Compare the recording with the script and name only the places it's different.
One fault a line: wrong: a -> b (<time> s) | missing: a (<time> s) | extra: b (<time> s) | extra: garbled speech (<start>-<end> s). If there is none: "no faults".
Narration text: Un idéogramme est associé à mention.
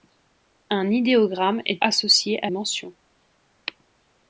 no faults